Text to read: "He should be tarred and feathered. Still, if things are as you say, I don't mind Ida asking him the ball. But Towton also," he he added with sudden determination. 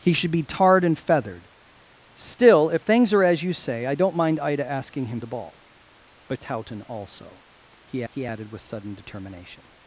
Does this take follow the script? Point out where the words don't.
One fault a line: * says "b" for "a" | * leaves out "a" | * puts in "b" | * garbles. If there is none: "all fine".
all fine